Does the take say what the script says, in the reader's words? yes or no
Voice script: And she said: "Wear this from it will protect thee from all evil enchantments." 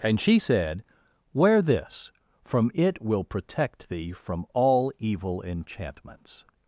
yes